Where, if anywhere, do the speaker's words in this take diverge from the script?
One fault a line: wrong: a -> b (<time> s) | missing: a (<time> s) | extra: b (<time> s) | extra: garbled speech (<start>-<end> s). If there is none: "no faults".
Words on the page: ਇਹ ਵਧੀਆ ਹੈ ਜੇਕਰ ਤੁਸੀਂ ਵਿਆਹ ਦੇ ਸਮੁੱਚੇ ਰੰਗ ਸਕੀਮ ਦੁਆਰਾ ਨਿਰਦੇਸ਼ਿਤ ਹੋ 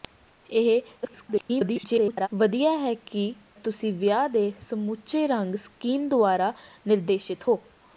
extra: garbled speech (1.0-2.3 s)
missing: ਜੇਕਰ (2.9 s)